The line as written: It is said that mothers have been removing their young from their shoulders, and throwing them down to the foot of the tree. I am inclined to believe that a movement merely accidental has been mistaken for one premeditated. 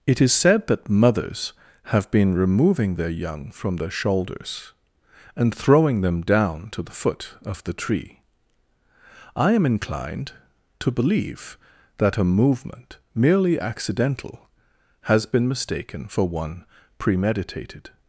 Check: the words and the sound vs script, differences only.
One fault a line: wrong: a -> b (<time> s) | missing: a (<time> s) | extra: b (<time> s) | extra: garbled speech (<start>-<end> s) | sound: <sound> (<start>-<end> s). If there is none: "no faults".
no faults